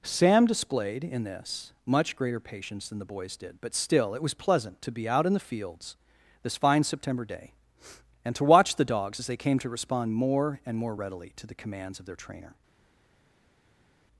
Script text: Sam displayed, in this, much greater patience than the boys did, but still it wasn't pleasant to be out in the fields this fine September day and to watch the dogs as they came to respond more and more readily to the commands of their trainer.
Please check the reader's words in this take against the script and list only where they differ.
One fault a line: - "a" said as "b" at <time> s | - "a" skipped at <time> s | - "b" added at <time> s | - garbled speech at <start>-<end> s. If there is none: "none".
- "wasn't" said as "was" at 4.2 s